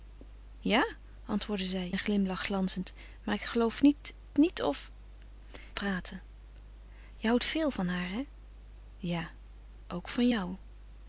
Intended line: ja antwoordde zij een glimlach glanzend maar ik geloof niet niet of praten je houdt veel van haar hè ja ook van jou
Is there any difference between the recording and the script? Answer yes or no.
no